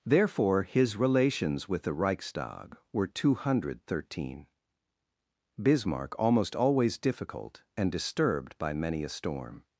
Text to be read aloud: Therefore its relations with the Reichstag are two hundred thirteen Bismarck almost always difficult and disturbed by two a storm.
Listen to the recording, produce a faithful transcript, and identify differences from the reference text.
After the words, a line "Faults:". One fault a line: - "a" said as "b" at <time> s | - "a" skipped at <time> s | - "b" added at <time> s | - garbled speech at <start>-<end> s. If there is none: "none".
Therefore his relations with the Reichstag were two hundred thirteen Bismarck almost always difficult and disturbed by many a storm.
Faults:
- "its" said as "his" at 0.6 s
- "are" said as "were" at 2.9 s
- "two" said as "many" at 8.7 s